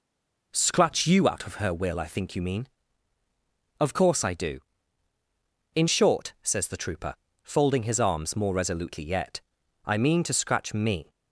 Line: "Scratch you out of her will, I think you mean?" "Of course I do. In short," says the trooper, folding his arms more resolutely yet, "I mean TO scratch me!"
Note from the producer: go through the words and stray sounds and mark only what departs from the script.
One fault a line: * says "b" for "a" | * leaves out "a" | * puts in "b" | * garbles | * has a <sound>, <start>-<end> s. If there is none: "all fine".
all fine